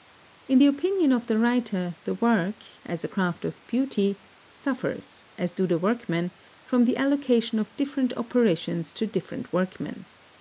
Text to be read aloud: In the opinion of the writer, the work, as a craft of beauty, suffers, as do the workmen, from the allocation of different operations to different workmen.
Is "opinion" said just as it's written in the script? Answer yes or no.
yes